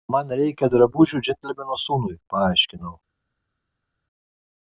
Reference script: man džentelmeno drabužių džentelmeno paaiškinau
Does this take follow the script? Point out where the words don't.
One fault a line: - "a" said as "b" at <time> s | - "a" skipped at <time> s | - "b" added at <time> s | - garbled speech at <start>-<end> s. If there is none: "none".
- "džentelmeno" said as "reikia" at 0.4 s
- "sūnui" added at 1.8 s